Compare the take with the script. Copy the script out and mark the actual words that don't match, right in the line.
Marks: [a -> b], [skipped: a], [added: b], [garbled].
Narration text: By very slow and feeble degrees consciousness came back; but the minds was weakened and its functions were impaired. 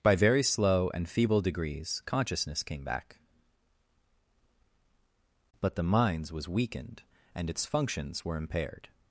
By very slow and feeble degrees consciousness came back; but the minds was weakened and its functions were impaired.